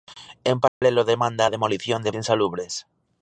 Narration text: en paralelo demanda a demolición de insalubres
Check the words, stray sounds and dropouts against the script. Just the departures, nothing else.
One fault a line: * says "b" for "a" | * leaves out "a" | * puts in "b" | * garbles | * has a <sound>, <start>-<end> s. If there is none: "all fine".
* has a dropout, 0.7-0.8 s